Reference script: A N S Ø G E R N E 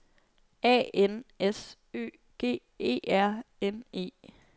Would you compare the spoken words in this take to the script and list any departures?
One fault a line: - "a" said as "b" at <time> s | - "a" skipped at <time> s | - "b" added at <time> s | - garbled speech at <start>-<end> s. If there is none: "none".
none